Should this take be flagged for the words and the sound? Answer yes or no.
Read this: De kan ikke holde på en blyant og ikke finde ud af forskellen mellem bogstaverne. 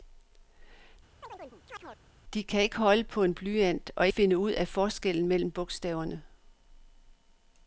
yes